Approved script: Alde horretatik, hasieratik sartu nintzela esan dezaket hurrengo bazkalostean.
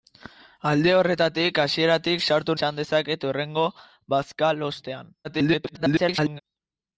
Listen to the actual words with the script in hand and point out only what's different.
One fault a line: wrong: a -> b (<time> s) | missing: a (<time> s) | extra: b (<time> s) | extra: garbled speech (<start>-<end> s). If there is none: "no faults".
missing: nintzela (2.6 s)
extra: garbled speech (5.2-6.4 s)